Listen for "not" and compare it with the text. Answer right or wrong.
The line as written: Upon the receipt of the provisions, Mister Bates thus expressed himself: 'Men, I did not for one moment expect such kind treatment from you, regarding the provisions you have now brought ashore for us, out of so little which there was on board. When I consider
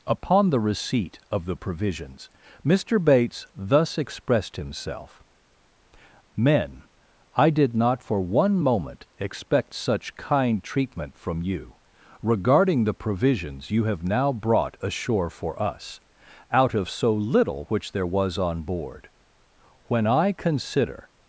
right